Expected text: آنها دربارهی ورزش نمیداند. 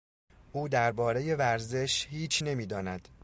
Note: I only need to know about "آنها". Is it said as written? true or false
false